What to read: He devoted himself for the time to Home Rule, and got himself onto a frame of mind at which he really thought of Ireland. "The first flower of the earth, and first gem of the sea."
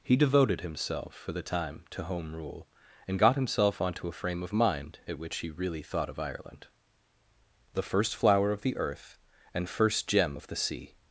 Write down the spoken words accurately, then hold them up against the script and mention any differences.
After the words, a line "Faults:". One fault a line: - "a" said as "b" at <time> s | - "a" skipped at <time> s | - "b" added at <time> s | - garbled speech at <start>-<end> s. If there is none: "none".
He devoted himself for the time to Home Rule, and got himself onto a frame of mind at which he really thought of Ireland. "The first flower of the earth, and first gem of the sea."
Faults:
none